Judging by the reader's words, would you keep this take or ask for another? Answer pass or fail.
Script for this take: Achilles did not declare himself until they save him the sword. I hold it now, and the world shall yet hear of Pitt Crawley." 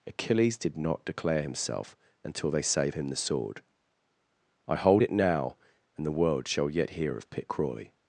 pass